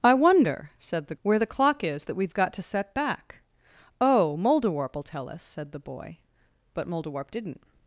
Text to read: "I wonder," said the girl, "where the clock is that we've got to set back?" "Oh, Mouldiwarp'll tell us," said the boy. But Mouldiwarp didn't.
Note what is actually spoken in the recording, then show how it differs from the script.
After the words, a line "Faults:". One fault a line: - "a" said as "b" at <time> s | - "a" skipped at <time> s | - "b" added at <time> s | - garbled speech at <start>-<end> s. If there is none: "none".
"I wonder," said the "where the clock is that we've got to set back?" "Oh, Mouldiwarp'll tell us," said the boy. But Mouldiwarp didn't.
Faults:
- "girl" skipped at 1.1 s